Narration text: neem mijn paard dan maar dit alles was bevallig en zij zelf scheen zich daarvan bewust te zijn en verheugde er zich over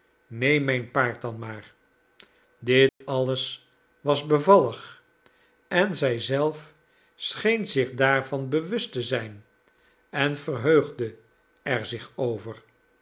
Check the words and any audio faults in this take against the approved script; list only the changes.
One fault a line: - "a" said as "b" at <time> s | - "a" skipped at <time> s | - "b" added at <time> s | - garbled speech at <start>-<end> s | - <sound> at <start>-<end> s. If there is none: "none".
- dropout at 2.9-3.0 s